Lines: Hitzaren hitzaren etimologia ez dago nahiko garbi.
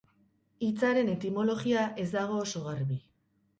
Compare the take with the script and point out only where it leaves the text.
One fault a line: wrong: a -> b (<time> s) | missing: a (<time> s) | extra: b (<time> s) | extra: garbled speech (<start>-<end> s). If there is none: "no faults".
missing: hitzaren (1.1 s)
wrong: nahiko -> oso (2.5 s)